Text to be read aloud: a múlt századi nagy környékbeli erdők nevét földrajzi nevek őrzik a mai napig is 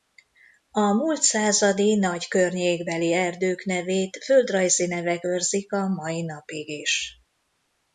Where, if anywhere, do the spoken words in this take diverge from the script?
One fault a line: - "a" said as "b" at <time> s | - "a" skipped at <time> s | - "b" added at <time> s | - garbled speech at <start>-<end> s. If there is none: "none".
none